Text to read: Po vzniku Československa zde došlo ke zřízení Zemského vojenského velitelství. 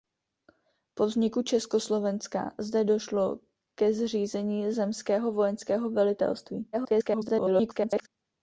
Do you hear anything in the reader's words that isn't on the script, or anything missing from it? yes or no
yes